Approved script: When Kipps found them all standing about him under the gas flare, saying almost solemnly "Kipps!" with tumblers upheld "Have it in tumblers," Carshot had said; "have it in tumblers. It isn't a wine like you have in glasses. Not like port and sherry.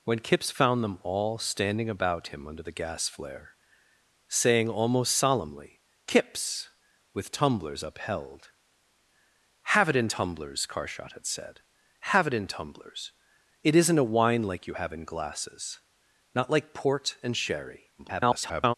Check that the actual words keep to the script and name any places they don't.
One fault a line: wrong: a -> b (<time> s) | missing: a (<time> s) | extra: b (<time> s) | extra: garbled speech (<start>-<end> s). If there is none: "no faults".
extra: garbled speech (18.0-18.7 s)